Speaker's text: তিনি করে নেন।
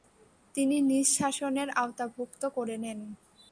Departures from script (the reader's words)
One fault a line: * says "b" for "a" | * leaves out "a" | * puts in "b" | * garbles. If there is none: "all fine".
* puts in "নিজ শাসনের আওতাভুক্ত"